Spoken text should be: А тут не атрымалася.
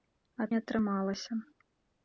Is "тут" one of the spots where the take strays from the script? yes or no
yes